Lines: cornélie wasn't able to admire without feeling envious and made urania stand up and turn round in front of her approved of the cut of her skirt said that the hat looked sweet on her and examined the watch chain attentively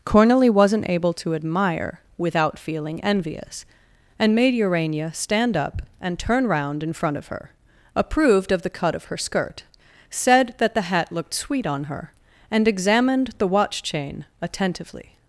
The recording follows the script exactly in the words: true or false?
true